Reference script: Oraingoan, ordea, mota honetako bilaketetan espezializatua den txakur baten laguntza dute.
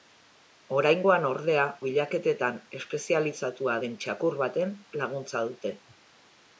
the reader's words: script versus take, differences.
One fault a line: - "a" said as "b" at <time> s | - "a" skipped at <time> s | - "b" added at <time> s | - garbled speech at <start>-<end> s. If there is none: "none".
- "mota honetako" skipped at 1.6 s